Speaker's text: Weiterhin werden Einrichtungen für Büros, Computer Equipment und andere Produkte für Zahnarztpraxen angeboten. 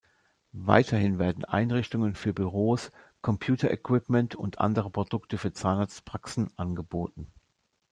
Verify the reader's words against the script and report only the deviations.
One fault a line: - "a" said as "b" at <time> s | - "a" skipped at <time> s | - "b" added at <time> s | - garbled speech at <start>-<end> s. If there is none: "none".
none